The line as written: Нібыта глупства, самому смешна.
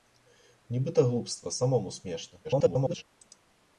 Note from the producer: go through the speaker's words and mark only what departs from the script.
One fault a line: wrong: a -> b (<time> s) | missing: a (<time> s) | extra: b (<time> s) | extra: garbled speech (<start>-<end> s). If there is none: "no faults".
extra: garbled speech (2.4-3.0 s)